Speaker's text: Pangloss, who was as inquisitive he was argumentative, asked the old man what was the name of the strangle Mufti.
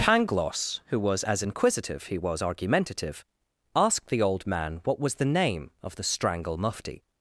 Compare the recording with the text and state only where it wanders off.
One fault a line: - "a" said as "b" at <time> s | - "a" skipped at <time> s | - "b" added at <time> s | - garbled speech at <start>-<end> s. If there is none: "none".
none